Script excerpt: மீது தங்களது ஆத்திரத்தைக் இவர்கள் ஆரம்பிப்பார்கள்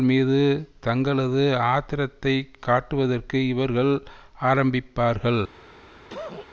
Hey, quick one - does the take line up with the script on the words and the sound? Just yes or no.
no